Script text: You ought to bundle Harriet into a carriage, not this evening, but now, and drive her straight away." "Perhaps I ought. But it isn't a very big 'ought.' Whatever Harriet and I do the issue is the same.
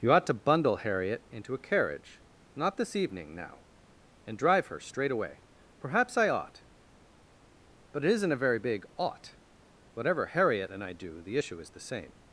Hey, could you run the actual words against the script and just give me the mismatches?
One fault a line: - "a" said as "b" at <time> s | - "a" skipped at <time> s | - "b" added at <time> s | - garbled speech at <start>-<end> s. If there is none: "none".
- "but" skipped at 3.3 s